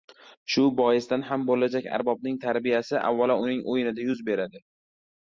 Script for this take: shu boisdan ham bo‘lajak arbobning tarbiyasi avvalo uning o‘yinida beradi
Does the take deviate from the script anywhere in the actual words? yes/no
yes